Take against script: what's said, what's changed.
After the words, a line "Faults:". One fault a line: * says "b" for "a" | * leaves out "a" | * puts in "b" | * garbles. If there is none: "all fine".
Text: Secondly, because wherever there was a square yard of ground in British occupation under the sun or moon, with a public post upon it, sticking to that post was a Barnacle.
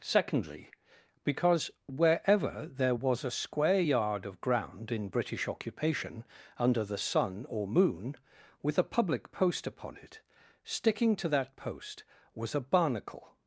Secondly, because wherever there was a square yard of ground in British occupation under the sun or moon, with a public post upon it, sticking to that post was a Barnacle.
Faults:
all fine